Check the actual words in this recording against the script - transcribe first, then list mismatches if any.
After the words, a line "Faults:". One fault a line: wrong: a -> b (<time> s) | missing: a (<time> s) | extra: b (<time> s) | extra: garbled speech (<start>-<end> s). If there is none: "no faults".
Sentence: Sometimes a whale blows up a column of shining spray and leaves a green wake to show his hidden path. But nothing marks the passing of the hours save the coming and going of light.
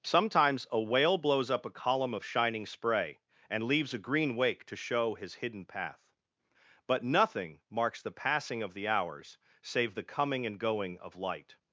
Sometimes a whale blows up a column of shining spray and leaves a green wake to show his hidden path. But nothing marks the passing of the hours save the coming and going of light.
Faults:
no faults